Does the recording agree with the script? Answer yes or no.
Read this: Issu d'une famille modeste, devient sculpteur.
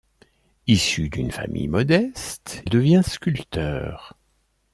yes